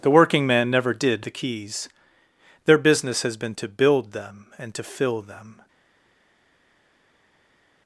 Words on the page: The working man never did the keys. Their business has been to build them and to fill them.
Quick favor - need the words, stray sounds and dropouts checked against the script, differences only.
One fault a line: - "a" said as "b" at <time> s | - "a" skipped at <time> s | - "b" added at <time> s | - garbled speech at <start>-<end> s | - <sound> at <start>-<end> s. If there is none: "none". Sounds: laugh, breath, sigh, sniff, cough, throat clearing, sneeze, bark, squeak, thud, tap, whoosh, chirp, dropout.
none